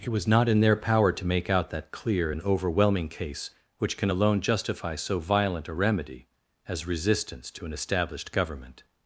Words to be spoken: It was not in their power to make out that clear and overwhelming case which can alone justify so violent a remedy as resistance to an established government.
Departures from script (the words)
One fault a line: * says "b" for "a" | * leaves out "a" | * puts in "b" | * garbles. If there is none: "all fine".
all fine